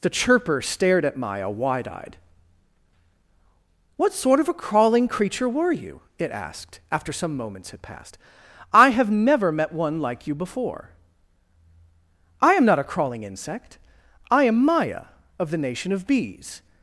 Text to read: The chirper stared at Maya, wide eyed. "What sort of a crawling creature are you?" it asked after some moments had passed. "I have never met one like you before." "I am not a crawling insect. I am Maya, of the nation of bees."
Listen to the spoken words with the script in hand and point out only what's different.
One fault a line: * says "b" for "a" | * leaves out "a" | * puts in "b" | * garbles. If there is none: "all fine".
* says "were" for "are"